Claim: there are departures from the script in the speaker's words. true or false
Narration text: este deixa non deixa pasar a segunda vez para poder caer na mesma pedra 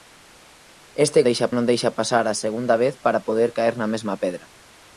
false